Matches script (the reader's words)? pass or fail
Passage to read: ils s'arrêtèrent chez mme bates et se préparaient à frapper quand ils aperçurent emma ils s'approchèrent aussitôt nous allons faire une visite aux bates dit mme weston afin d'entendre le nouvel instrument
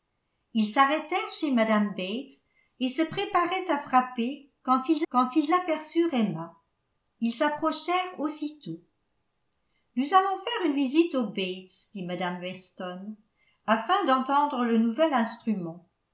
fail